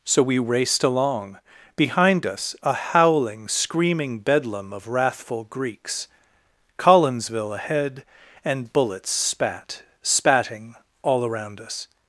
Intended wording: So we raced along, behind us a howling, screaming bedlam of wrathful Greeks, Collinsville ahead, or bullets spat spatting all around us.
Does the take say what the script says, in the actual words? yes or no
no